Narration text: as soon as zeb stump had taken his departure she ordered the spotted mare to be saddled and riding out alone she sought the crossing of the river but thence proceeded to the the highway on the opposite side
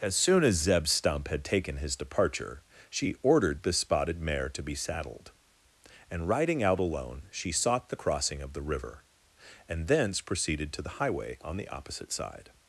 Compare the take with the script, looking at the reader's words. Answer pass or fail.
fail